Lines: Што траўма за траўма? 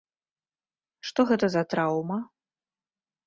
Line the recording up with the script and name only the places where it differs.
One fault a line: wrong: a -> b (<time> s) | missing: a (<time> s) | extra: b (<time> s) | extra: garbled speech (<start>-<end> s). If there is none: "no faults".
wrong: траўма -> гэта (1.3 s)